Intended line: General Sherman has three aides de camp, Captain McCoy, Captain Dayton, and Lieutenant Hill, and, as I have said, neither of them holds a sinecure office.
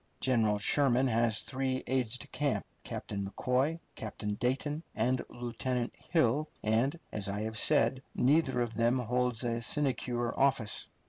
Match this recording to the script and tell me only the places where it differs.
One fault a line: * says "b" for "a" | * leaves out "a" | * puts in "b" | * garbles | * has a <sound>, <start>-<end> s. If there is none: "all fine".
all fine